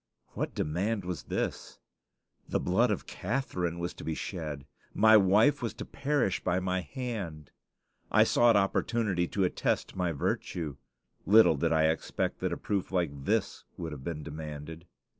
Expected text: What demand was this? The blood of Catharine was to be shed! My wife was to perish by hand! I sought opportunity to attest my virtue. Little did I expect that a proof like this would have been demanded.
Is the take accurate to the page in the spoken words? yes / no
no